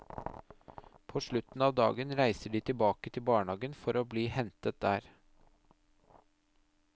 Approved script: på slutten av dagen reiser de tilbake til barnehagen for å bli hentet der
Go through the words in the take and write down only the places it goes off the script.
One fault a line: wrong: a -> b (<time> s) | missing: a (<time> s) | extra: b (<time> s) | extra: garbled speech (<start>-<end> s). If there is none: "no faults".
no faults